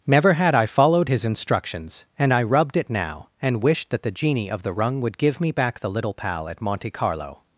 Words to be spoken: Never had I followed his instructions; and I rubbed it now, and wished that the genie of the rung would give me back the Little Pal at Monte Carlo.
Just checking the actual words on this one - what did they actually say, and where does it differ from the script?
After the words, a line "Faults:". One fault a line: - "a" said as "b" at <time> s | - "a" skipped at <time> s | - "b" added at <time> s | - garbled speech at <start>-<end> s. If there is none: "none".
Never had I followed his instructions; and I rubbed it now, and wished that the genie of the rung would give me back the Little Pal at Monte Carlo.
Faults:
none